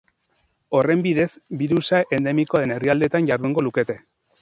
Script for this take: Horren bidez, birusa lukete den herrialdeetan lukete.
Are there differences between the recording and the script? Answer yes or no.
yes